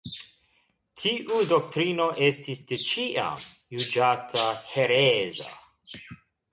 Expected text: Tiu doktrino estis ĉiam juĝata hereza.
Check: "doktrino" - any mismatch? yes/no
no